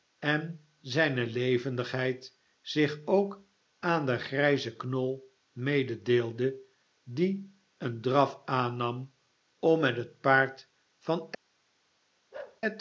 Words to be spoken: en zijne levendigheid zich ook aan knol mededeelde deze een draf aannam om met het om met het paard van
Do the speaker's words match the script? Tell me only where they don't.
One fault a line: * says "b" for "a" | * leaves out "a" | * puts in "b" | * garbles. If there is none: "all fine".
* puts in "den grijzen"
* says "die" for "deze"
* leaves out "om met het"